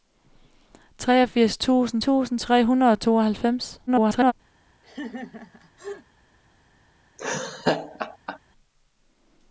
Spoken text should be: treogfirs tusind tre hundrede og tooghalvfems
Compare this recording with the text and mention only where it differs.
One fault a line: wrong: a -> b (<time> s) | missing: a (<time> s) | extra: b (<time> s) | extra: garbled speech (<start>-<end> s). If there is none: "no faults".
extra: tusind (2.0 s)
extra: garbled speech (3.9-4.3 s)